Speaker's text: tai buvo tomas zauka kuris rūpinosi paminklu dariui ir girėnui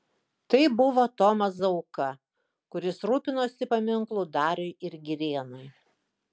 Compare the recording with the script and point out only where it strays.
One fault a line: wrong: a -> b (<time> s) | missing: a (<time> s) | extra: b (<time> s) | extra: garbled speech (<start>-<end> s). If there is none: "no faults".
no faults